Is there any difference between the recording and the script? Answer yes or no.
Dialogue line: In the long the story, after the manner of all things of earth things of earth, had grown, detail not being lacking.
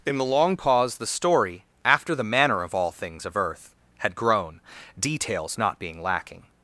yes